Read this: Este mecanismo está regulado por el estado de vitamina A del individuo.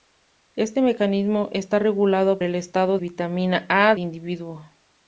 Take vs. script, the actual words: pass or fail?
fail